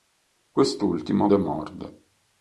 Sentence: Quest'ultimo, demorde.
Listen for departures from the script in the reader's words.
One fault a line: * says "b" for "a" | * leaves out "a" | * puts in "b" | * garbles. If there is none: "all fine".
all fine